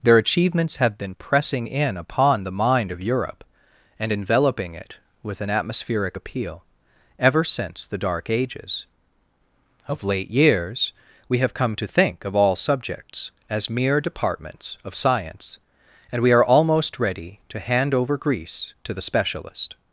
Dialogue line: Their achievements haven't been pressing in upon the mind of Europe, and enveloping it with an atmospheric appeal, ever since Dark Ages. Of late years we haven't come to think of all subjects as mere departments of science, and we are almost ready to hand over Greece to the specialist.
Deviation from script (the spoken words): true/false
true